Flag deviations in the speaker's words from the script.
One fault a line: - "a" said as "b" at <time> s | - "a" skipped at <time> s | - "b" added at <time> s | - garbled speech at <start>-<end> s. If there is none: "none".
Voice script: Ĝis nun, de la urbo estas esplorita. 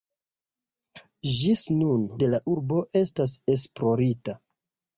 none